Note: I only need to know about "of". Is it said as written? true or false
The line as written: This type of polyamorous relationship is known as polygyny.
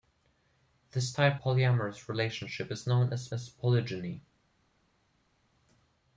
false